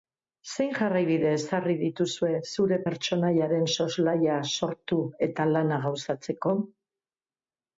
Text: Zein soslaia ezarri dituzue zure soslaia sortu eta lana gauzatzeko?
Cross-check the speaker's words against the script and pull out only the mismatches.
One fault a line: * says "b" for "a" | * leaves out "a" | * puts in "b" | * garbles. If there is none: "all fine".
* says "jarraibide" for "soslaia"
* puts in "pertsonaiaren"